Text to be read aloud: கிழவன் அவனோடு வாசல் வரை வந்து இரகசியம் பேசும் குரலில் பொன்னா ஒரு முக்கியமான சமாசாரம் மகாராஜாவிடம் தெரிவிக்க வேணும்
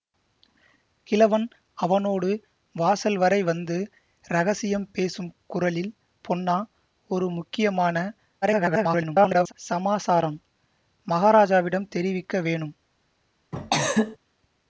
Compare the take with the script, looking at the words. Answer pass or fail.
fail